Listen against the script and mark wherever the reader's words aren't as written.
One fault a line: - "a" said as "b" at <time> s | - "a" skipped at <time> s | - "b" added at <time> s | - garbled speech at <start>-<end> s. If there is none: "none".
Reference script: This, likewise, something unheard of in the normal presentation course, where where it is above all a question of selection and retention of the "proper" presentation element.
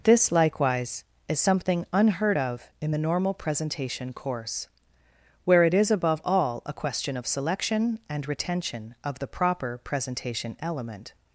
- "is" added at 1.3 s
- "where" skipped at 5.6 s